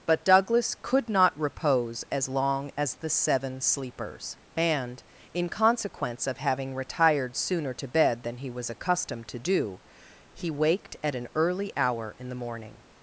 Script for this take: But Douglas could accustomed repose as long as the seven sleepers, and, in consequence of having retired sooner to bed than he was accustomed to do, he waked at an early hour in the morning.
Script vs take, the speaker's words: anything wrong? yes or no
yes